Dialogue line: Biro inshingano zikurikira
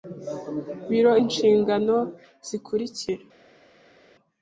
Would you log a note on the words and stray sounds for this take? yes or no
no